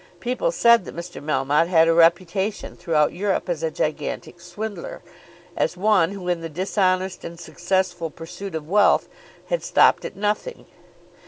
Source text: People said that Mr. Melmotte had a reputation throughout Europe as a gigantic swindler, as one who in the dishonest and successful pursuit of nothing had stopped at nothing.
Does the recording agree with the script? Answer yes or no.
no